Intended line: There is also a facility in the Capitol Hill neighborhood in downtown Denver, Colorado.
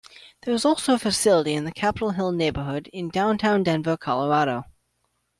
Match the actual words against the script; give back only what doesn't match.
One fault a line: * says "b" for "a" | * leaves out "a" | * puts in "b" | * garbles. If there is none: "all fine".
all fine